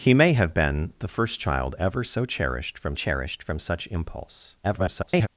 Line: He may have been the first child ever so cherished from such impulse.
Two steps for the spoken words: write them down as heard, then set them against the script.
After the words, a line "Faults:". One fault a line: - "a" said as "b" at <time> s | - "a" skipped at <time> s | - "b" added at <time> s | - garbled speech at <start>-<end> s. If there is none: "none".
He may have been the first child ever so cherished from cherished from such impulse. [garbled]
Faults:
- "cherished from" added at 2.9 s
- garbled speech at 4.6-5.3 s